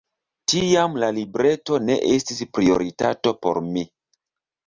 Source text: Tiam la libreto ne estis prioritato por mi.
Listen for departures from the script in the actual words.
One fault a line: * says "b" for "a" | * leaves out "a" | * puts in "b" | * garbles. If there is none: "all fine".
all fine